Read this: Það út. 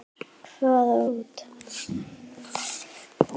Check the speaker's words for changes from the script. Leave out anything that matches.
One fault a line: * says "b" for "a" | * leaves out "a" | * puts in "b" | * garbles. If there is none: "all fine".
all fine